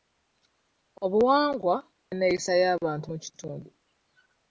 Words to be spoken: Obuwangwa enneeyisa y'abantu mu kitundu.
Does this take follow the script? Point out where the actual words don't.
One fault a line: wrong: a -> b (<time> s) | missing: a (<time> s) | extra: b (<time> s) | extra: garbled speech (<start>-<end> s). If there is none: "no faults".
no faults